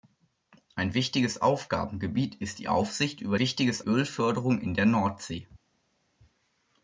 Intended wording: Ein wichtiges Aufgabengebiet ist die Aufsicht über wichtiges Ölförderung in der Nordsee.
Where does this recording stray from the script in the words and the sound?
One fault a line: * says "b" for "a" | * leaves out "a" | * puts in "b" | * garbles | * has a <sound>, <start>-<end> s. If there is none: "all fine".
all fine